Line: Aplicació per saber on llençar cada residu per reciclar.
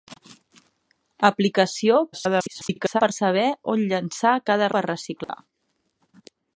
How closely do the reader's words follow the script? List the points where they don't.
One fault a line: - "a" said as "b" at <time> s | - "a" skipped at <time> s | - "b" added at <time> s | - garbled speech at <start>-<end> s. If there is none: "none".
- garbled speech at 2.1-3.0 s
- "residu" skipped at 4.7 s